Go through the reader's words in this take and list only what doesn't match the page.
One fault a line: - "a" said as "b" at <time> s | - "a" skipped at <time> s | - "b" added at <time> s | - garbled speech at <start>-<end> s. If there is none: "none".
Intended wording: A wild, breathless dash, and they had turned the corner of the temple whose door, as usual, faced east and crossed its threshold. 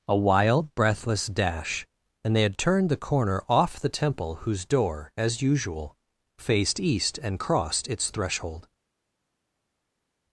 - "of" said as "off" at 3.5 s